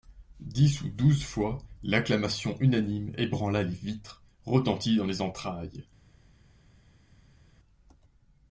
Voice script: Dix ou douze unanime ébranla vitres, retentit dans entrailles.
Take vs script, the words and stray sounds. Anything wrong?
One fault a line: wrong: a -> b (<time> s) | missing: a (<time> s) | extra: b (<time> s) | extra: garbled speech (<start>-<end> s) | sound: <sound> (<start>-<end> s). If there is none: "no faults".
extra: fois l'acclamation (1.2 s)
extra: les (3.6 s)
extra: les (5.0 s)